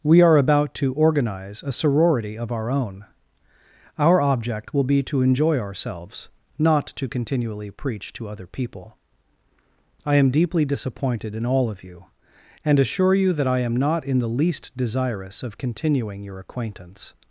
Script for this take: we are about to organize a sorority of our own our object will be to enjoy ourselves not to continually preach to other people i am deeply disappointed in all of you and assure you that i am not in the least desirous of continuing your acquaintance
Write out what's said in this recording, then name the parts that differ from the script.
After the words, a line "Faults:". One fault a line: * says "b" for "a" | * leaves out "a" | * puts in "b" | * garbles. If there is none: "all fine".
we are about to organize a sorority of our own our object will be to enjoy ourselves not to continually preach to other people i am deeply disappointed in all of you and assure you that i am not in the least desirous of continuing your acquaintance
Faults:
all fine